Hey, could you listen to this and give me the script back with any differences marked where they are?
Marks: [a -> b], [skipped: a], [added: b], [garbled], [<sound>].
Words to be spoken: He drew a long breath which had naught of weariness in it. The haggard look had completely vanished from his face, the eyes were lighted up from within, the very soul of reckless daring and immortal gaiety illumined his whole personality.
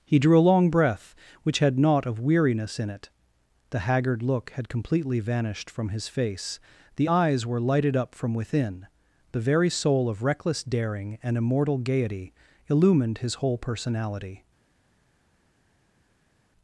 He drew a long breath which had naught of weariness in it. The haggard look had completely vanished from his face, the eyes were lighted up from within, the very soul of reckless daring and immortal gaiety illumined his whole personality.